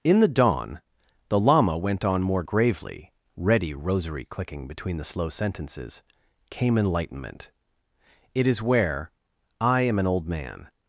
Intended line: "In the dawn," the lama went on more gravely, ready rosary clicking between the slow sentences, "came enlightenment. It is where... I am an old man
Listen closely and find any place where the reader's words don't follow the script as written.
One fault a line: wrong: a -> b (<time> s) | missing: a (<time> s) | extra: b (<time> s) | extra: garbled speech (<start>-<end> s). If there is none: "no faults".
no faults